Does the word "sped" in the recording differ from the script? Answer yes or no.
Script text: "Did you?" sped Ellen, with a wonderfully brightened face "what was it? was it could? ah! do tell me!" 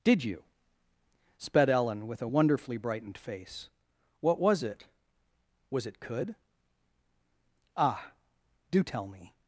no